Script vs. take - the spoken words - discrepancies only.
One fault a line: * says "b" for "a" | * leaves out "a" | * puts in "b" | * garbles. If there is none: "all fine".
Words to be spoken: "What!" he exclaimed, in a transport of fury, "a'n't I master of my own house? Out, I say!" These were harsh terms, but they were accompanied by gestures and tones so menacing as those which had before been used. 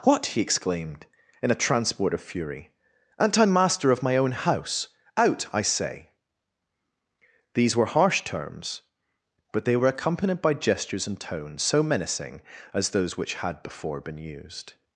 all fine